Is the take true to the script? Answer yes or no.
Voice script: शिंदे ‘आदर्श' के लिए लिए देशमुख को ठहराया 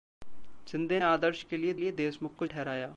yes